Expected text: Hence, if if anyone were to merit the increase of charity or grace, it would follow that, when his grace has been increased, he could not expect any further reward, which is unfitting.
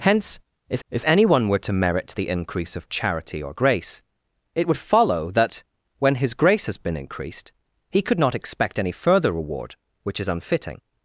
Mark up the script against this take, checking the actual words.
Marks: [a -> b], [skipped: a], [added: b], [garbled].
Hence, if if anyone were to merit the increase of charity or grace, it would follow that, when his grace has been increased, he could not expect any further reward, which is unfitting.